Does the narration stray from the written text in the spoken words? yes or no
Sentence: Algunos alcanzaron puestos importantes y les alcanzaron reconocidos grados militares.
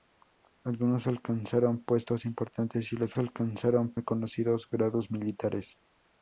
no